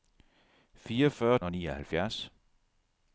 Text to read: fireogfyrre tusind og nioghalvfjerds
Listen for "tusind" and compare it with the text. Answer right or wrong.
wrong